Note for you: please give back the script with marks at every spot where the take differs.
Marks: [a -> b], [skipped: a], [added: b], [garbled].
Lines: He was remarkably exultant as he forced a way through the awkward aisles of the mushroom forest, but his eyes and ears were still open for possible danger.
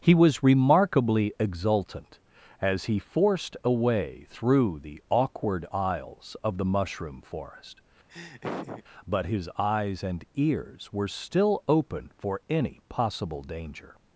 He was remarkably exultant as he forced a way through the awkward aisles of the mushroom forest, but his eyes and ears were still open for [added: any] possible danger.